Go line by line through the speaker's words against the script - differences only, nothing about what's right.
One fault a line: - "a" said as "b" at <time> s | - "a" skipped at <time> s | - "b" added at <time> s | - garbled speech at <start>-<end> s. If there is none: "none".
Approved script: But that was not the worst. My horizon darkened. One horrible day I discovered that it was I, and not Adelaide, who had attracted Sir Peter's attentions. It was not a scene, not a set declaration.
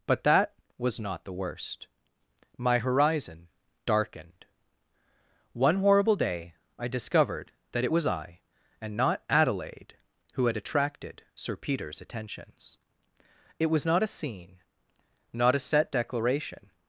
none